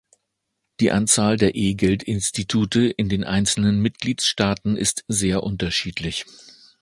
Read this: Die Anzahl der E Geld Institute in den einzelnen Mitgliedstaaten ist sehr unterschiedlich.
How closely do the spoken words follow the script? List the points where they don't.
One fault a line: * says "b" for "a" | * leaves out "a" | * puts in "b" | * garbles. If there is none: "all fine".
all fine